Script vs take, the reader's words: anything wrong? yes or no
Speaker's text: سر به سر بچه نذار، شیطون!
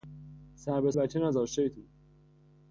yes